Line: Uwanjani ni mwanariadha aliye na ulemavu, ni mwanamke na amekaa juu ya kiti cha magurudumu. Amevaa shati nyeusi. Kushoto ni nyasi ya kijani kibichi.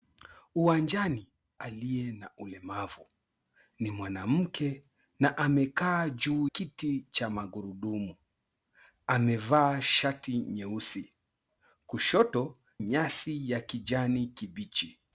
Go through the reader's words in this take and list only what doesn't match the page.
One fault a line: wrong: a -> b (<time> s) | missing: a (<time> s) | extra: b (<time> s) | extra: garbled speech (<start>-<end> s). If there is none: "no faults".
missing: ni mwanariadha (1.3 s)
missing: ya (6.5 s)
missing: ni (12.6 s)